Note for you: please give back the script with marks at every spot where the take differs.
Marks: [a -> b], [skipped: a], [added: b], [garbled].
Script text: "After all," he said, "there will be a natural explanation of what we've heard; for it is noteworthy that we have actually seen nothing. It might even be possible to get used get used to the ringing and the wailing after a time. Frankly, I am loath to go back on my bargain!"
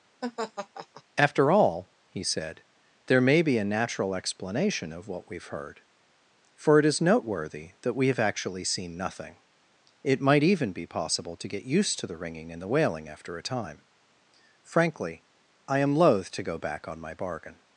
"After all," he said, "there [will -> may] be a natural explanation of what we've heard; for it is noteworthy that we have actually seen nothing. It might even be possible to get used [skipped: get used] to the ringing and the wailing after a time. Frankly, I am loath to go back on my bargain!"